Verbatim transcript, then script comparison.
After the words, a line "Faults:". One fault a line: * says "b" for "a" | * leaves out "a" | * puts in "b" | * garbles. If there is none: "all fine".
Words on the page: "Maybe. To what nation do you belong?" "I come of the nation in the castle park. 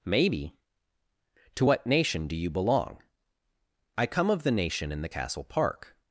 "Maybe. To what nation do you belong?" "I come of the nation in the castle park.
Faults:
all fine